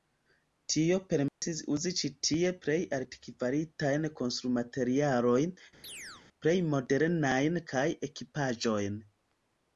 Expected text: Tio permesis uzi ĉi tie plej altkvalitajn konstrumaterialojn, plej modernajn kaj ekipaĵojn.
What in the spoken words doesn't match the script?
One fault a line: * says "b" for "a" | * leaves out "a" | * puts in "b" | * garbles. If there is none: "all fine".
all fine